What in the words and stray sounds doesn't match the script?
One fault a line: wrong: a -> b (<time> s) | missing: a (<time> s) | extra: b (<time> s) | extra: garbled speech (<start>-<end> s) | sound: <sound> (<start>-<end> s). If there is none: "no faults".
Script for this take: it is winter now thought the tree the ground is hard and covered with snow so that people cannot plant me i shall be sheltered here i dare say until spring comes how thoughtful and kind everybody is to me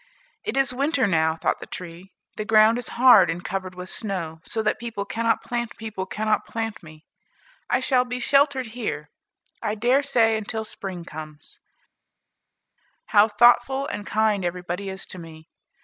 extra: people cannot plant (5.8 s)